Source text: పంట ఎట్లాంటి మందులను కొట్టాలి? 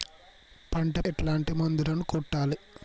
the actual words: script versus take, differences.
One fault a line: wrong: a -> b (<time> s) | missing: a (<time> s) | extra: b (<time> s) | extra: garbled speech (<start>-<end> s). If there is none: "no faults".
no faults